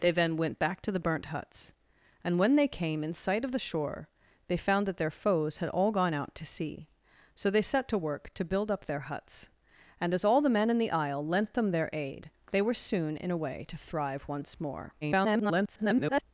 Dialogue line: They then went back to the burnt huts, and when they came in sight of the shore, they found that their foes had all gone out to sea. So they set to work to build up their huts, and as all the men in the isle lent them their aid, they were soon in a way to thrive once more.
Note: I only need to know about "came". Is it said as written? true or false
true